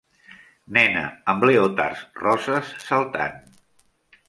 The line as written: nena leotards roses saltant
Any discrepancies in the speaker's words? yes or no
yes